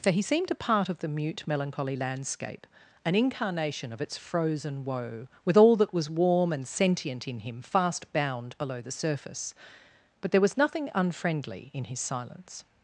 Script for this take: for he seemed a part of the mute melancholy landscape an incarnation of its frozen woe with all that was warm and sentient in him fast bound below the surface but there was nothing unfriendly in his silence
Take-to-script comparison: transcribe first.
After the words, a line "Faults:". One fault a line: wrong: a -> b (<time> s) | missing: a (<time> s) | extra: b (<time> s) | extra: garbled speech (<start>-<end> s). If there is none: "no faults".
for he seemed a part of the mute melancholy landscape an incarnation of its frozen woe with all that was warm and sentient in him fast bound below the surface but there was nothing unfriendly in his silence
Faults:
no faults